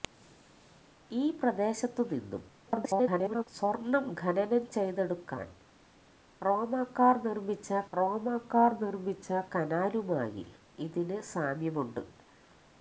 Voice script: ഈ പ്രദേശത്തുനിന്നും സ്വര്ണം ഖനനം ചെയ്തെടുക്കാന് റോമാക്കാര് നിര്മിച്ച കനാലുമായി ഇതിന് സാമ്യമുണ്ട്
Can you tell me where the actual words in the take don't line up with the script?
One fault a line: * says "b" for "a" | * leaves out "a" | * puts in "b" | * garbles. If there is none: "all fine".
* garbles
* puts in "റോമാക്കാര് നിര്മിച്ച"